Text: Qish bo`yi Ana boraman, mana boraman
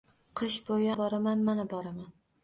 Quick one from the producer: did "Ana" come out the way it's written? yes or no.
no